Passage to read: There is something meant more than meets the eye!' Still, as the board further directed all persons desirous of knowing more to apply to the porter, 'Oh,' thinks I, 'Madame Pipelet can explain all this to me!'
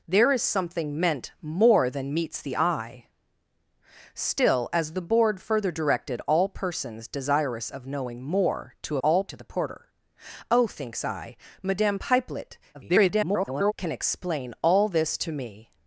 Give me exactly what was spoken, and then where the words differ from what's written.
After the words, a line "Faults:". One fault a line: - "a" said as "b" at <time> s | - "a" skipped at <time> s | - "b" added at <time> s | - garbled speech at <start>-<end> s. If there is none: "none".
There is something meant more than meets the eye!' Still, as the board further directed all persons desirous of knowing more to all to the porter, 'Oh,' thinks I, 'Madame Pipelet [garbled] can explain all this to me!'
Faults:
- "apply" said as "all" at 9.0 s
- garbled speech at 12.7-13.7 s